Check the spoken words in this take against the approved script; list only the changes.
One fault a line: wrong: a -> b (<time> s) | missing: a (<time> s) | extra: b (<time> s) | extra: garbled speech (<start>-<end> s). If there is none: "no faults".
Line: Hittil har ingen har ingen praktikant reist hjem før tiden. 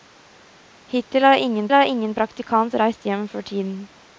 no faults